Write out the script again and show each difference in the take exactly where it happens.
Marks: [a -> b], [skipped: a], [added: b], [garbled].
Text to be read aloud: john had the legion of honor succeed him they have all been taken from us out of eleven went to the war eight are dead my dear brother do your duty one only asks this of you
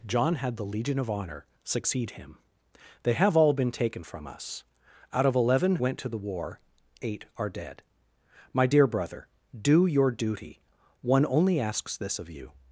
john had the legion of honor succeed him they have all been taken from us out of eleven went to the war eight are dead my dear brother do your duty one only asks this of you